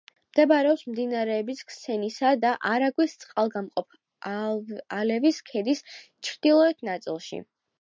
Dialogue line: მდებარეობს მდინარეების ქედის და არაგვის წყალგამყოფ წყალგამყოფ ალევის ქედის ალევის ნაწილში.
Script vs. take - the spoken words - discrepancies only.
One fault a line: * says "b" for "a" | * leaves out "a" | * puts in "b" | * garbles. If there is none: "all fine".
* says "ქსნისა" for "ქედის"
* leaves out "წყალგამყოფ"
* says "ჩრდილოეთ" for "ალევის"